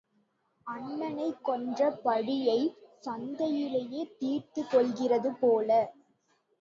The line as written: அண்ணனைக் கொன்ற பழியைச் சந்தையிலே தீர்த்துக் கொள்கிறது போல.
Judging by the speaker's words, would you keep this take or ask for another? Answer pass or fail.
pass